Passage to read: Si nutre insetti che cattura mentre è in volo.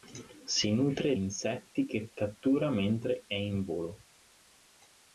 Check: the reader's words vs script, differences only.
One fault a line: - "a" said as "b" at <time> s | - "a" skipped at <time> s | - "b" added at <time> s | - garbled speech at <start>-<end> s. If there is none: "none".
none